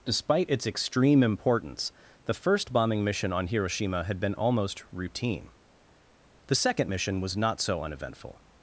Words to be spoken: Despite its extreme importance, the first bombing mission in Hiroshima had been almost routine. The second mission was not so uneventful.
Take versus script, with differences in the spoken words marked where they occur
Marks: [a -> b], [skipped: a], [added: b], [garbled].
Despite its extreme importance, the first bombing mission [in -> on] Hiroshima had been almost routine. The second mission was not so uneventful.